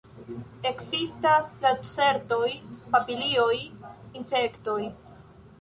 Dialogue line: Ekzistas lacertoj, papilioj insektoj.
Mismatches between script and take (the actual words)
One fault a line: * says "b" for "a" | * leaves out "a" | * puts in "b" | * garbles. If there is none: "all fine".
all fine